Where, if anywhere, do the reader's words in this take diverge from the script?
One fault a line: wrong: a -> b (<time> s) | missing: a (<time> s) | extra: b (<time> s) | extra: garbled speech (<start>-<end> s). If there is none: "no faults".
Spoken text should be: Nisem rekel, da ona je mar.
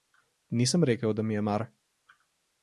wrong: ona -> mi (1.2 s)